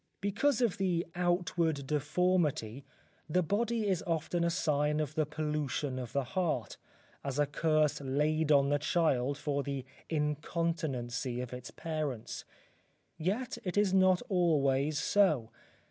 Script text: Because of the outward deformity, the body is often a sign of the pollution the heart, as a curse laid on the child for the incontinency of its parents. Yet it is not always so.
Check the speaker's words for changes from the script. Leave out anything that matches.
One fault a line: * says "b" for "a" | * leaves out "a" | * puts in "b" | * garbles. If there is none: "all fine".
* puts in "of"